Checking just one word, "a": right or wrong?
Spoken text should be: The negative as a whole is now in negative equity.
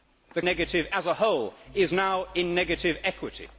right